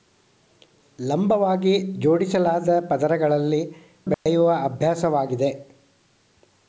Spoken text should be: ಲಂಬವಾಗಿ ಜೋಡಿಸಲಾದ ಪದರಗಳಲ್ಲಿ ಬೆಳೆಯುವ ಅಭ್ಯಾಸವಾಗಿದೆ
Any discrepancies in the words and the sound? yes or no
yes